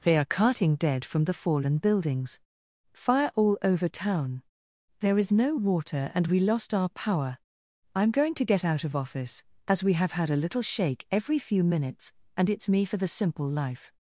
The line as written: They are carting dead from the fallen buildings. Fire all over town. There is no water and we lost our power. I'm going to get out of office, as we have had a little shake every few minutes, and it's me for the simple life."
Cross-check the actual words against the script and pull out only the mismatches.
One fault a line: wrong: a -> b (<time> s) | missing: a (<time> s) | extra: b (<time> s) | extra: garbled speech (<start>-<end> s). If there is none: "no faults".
no faults